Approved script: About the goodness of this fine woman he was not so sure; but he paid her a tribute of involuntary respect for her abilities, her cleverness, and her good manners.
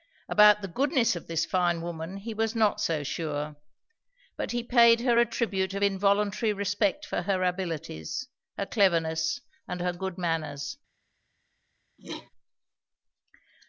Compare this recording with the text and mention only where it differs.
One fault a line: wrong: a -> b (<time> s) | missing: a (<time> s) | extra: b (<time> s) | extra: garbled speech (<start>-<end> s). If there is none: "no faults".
no faults